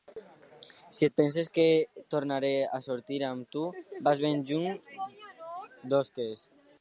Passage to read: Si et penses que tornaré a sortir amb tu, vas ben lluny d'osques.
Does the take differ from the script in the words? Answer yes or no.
no